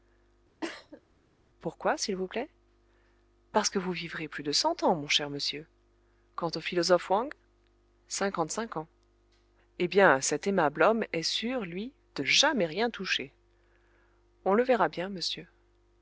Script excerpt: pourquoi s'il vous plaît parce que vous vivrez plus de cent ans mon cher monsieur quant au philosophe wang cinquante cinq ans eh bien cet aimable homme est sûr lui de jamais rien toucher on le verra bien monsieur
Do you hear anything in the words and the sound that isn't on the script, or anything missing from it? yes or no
yes